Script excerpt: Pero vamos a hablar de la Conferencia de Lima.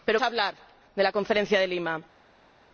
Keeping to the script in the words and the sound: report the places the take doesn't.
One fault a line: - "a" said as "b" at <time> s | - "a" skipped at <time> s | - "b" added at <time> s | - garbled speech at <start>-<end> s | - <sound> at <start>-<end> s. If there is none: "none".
- "vamos" skipped at 0.2 s